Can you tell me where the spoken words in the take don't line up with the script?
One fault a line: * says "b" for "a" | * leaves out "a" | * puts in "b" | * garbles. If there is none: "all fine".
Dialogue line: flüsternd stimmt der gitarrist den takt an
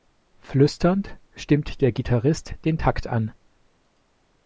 all fine